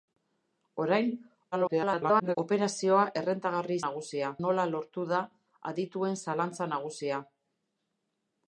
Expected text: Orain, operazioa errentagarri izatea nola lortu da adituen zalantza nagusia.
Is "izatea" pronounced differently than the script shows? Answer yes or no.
yes